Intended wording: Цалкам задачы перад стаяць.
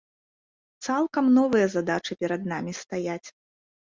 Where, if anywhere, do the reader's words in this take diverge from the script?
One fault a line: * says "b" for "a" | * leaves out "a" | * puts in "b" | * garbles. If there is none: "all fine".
* puts in "новыя"
* puts in "намі"